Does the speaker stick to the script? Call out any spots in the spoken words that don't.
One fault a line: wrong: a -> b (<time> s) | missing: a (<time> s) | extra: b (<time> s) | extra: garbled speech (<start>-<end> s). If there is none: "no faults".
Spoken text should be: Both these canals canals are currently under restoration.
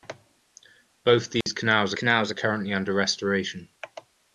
no faults